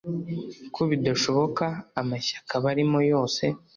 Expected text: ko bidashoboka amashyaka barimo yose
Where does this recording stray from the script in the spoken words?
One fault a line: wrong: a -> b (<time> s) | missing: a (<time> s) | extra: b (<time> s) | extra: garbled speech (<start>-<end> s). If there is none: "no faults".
no faults